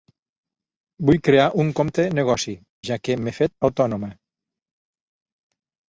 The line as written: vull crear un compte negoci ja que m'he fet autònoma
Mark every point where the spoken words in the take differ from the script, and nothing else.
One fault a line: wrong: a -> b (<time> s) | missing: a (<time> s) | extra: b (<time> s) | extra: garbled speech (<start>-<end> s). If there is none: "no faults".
no faults